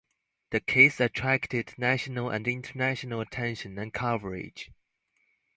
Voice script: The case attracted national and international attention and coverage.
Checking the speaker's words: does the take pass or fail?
pass